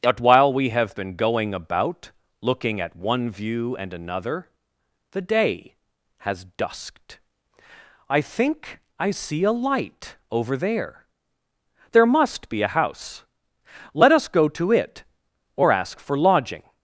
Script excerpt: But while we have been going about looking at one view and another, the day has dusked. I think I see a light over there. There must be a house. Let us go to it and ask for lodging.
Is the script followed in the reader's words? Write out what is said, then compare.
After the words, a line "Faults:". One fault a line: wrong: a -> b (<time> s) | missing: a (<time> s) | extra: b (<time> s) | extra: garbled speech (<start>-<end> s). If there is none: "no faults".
But while we have been going about looking at one view and another, the day has dusked. I think I see a light over there. There must be a house. Let us go to it or ask for lodging.
Faults:
wrong: and -> or (15.6 s)